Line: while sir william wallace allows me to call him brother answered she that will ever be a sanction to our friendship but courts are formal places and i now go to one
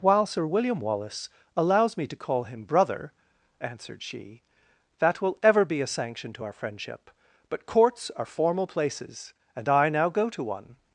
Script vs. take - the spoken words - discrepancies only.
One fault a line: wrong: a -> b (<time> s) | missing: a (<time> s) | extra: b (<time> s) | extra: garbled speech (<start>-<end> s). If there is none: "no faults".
no faults